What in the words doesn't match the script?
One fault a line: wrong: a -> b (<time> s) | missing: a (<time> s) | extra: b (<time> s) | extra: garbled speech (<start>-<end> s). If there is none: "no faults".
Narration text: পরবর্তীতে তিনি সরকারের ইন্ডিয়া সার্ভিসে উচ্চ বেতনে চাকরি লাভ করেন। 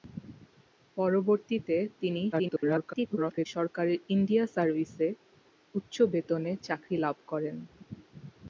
extra: garbled speech (2.3-3.5 s)